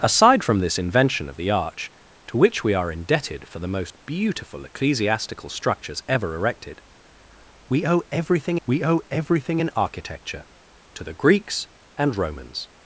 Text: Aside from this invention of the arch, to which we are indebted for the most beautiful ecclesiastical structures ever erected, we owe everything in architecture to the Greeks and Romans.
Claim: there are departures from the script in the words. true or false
true